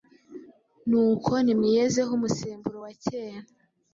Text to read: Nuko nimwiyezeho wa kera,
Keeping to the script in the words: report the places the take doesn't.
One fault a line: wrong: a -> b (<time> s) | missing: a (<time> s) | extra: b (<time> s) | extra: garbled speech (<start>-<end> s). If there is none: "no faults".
extra: umusemburo (2.2 s)